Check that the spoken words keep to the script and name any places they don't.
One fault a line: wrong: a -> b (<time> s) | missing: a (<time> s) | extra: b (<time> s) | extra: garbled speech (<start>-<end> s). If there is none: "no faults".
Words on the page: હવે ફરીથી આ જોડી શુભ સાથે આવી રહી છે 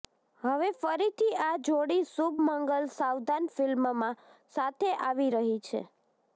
extra: મંગલ સાવધાન ફિલ્મમાં (2.4 s)